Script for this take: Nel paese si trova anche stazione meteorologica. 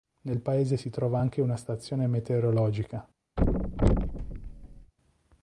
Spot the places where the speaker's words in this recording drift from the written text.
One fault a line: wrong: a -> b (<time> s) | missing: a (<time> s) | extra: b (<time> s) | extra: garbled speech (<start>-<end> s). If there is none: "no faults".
extra: una (1.4 s)